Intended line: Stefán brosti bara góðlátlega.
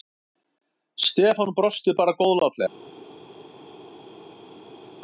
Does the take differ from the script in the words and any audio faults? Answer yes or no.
no